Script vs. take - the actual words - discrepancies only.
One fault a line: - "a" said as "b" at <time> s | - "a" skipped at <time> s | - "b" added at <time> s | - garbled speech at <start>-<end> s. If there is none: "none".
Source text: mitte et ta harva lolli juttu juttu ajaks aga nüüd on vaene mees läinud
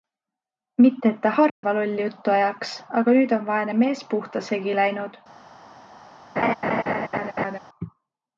- "juttu" skipped at 2.3 s
- "puhta segi" added at 4.1 s